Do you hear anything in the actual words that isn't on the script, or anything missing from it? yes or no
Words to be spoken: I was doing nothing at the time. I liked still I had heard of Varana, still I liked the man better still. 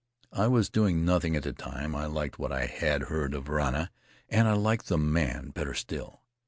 yes